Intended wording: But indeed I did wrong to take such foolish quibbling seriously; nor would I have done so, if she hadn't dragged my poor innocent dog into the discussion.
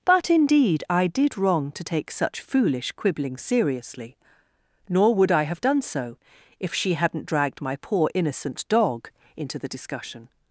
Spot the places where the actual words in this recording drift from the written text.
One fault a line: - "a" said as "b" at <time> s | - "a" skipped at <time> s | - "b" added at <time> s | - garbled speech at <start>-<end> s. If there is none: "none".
none